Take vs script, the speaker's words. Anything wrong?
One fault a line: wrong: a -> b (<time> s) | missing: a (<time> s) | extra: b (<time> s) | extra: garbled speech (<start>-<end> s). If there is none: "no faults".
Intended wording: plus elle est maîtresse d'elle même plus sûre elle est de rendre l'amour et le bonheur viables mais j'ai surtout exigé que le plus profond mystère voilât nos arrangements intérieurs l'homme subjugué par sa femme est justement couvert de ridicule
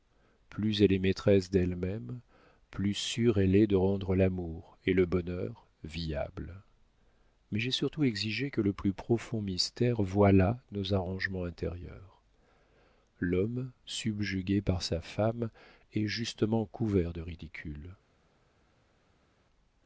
no faults